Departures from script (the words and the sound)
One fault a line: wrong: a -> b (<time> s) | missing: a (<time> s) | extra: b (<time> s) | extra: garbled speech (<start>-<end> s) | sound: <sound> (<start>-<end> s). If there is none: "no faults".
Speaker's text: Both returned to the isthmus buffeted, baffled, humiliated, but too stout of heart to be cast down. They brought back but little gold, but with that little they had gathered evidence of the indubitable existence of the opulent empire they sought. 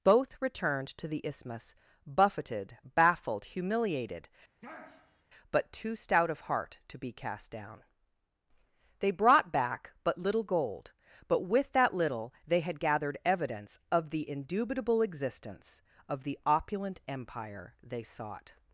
sound: sniff (4.6-5.2 s)